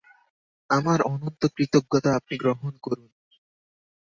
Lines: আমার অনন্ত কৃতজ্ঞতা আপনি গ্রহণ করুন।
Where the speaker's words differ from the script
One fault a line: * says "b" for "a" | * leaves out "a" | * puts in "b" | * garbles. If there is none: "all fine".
all fine